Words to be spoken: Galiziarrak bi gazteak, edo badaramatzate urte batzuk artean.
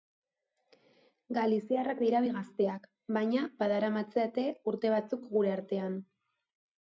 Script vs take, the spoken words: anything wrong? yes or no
yes